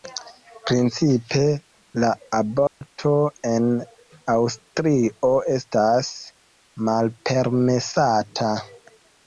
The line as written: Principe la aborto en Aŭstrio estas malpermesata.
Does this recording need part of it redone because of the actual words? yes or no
no